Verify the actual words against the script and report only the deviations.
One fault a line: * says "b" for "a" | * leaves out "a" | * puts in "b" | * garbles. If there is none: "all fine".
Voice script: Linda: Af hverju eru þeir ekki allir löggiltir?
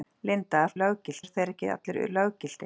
* says "löggiltir" for "hverju"